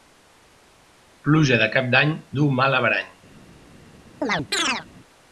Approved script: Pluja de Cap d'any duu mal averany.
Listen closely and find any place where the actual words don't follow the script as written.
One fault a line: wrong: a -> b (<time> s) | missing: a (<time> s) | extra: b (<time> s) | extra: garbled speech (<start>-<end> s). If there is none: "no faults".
no faults